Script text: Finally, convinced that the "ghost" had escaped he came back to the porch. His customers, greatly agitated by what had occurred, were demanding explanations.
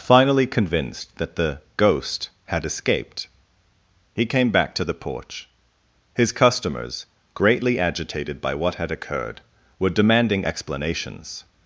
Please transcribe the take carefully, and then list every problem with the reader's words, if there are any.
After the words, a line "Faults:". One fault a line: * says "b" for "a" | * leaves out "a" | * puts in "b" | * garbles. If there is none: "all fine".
Finally, convinced that the "ghost" had escaped he came back to the porch. His customers, greatly agitated by what had occurred, were demanding explanations.
Faults:
all fine